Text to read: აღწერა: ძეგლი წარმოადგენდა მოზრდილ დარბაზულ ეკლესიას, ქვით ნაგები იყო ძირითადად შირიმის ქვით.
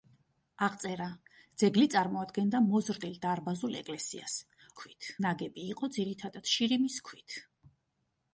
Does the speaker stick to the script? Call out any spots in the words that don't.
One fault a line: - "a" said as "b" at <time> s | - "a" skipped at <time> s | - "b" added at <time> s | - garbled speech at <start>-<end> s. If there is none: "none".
none